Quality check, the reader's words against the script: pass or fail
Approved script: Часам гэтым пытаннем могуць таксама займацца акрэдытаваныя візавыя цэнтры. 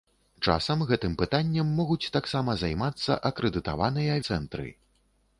fail